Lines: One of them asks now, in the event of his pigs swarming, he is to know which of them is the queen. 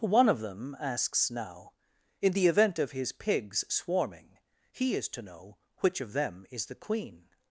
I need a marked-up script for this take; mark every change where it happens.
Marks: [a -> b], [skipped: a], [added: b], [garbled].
One of them asks now, in the event of his pigs swarming, he is to know which of them is the queen.